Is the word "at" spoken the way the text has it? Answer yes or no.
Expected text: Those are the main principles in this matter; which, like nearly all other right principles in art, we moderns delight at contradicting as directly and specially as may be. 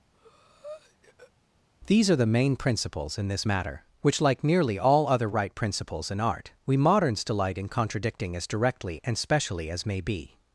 no